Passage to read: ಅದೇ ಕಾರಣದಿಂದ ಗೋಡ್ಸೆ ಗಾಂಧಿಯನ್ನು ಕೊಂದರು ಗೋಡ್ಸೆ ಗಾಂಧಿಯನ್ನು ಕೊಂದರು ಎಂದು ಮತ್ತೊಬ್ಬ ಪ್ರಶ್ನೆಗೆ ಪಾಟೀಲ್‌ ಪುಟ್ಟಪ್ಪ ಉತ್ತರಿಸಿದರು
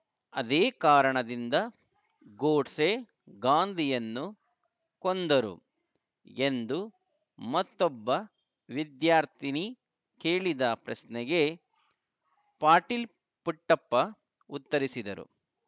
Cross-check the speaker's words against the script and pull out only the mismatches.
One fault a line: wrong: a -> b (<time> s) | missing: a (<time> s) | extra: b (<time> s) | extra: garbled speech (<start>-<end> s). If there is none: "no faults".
wrong: ಗೋಡ್ಸೆ ಗಾಂಧಿಯನ್ನು ಕೊಂದರು ಎಂದು ಮತ್ತೊಬ್ಬ -> ಎಂದು ಮತ್ತೊಬ್ಬ ವಿದ್ಯಾರ್ಥಿನಿ ಕೇಳಿದ (6.4 s)